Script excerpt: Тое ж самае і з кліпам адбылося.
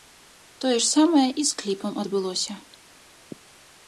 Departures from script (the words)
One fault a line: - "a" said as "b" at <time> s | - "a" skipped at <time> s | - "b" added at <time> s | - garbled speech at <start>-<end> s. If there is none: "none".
none